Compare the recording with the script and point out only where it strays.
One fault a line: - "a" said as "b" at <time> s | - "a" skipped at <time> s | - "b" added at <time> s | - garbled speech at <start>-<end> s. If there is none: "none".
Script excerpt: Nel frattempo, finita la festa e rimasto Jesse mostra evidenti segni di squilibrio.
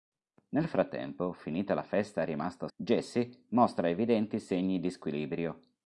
none